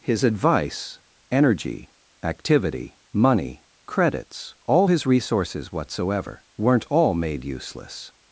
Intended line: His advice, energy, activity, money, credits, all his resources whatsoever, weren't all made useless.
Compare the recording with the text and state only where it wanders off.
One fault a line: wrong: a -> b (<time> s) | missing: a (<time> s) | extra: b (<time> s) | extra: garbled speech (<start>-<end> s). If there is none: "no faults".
no faults